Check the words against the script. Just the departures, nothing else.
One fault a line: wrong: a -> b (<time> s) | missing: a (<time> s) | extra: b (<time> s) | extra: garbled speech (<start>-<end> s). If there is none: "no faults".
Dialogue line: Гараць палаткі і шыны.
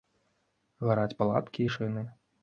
no faults